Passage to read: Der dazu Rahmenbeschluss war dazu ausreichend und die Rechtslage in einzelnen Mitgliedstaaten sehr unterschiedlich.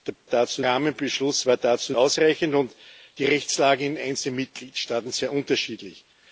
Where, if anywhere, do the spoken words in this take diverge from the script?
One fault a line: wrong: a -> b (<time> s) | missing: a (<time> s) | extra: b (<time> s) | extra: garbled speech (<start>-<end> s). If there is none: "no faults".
no faults